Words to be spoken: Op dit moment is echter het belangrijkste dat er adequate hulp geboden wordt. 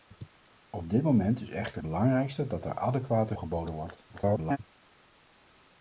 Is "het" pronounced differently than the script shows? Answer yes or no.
yes